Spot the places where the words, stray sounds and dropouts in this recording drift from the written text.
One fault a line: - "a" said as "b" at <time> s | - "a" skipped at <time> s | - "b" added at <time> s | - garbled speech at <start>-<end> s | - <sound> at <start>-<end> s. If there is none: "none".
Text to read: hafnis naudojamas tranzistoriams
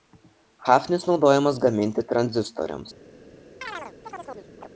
- "gaminti" added at 1.7 s
- chirp at 3.6-4.7 s